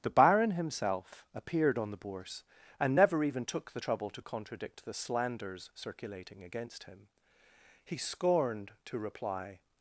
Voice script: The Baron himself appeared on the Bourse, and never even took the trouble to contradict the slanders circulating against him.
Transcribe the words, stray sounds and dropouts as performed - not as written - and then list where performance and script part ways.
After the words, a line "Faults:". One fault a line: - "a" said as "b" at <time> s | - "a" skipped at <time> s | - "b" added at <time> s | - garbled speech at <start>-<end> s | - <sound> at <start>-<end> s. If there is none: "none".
The Baron himself appeared on the Bourse, and never even took the trouble to contradict the slanders circulating against him. He scorned to reply
Faults:
- "He scorned to reply" added at 7.8 s